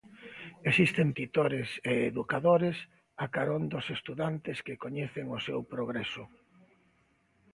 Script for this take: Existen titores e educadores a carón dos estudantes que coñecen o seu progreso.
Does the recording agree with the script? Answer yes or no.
yes